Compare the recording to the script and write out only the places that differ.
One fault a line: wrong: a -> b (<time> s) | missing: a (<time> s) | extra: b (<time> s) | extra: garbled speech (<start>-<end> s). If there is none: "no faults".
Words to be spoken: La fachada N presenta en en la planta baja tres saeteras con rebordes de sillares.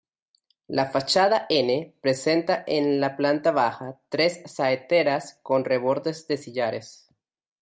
missing: en (3.0 s)